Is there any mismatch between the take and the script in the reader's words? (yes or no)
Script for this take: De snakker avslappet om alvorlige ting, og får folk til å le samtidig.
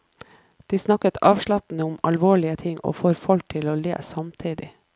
no